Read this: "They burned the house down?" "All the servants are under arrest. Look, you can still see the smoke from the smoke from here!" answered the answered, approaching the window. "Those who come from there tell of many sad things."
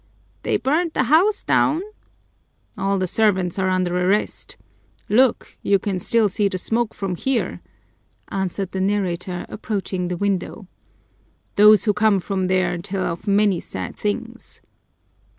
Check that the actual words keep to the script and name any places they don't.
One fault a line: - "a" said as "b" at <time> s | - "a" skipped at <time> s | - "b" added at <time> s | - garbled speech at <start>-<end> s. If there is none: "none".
- "the smoke from" skipped at 7.2 s
- "answered" said as "narrator" at 8.8 s